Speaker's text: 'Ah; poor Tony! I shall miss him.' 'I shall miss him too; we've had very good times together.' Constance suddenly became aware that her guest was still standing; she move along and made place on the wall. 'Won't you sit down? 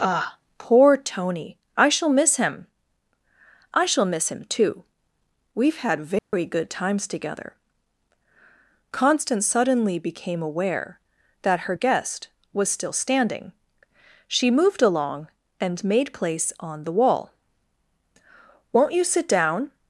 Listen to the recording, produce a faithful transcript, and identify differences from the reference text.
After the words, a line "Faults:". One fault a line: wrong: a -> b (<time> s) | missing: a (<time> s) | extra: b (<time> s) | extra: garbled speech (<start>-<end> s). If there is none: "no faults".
'Ah; poor Tony! I shall miss him.' 'I shall miss him too; we've had very good times together.' Constance suddenly became aware that her guest was still standing; she moved along and made place on the wall. 'Won't you sit down?
Faults:
wrong: move -> moved (14.5 s)